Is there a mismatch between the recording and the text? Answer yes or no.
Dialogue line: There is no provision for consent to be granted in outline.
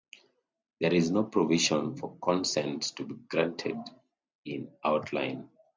no